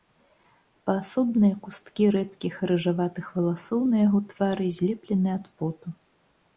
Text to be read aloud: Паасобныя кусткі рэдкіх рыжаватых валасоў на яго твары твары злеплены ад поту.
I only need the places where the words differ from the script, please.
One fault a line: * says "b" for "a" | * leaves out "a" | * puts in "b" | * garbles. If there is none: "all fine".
* leaves out "твары"